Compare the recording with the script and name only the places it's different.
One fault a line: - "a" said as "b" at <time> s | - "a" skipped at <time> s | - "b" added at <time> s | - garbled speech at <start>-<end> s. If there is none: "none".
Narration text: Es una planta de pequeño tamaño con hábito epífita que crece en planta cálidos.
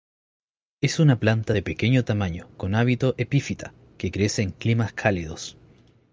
- "planta" said as "climas" at 4.5 s